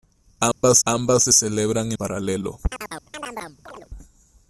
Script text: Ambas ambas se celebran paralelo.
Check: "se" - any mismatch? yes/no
no